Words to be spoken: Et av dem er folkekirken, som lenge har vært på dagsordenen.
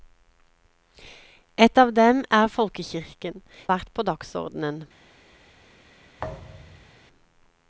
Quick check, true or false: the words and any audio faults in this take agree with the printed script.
false